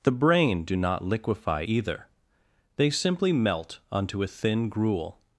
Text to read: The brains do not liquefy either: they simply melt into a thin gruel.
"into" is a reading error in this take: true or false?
true